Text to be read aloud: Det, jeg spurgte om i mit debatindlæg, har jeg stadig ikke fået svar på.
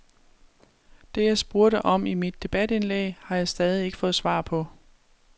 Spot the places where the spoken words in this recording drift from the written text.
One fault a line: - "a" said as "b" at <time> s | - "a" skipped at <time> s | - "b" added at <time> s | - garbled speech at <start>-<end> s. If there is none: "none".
none